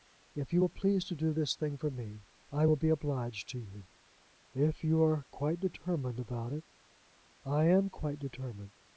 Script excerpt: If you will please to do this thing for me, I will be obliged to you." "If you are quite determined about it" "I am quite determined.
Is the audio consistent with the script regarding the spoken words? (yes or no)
yes